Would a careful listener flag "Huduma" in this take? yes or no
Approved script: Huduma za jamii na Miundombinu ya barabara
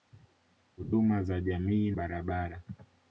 no